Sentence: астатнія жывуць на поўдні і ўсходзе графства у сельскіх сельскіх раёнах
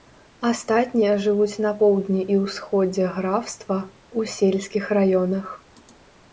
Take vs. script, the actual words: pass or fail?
fail